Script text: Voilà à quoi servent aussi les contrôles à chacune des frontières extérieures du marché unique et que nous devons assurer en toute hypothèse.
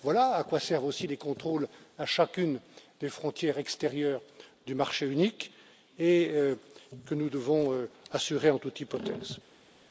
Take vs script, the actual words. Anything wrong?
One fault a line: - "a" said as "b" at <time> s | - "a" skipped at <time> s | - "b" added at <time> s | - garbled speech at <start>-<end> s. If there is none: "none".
none